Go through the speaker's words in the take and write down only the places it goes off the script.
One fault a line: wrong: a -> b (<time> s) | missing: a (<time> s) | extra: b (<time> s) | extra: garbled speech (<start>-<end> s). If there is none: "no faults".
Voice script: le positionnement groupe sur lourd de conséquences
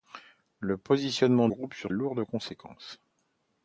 no faults